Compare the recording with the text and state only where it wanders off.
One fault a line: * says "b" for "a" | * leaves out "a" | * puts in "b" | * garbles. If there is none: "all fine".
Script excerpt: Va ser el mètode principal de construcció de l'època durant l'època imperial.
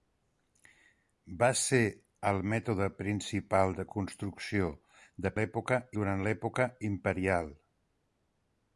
all fine